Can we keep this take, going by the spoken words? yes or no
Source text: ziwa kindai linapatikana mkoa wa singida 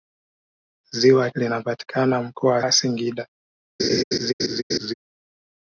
no